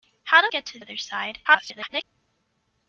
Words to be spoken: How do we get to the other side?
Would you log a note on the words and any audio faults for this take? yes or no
yes